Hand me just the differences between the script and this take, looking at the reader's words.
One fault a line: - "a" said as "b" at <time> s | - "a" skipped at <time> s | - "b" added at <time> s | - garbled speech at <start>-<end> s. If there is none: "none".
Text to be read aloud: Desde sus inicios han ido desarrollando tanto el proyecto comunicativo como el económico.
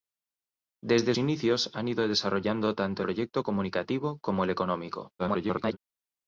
- "sus" skipped at 1.1 s
- "el" skipped at 3.0 s
- garbled speech at 5.2-5.8 s